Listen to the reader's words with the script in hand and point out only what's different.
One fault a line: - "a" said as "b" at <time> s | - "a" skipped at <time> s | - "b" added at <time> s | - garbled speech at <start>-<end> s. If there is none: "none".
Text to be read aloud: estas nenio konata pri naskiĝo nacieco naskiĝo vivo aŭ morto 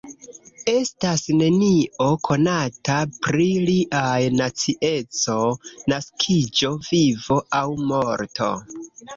- "naskiĝo" said as "liaj" at 3.7 s